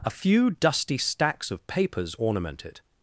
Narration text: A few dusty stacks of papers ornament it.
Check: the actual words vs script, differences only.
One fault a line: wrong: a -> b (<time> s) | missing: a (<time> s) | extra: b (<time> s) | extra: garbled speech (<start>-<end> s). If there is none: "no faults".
no faults